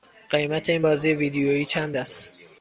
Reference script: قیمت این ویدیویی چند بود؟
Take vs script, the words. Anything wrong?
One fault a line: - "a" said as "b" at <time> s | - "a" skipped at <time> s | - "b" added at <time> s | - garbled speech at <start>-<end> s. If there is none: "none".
- "بازی" added at 0.8 s
- "بود" said as "است" at 2.0 s